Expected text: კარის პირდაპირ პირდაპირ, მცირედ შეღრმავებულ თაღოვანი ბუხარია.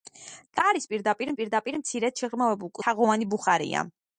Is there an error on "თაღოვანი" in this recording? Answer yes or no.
no